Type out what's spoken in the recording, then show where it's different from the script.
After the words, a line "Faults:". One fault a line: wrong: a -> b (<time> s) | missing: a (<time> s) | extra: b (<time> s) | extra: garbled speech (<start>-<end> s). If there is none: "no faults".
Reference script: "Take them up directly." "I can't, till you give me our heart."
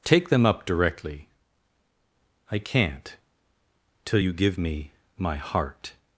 "Take them up directly." "I can't, till you give me my heart."
Faults:
wrong: our -> my (5.2 s)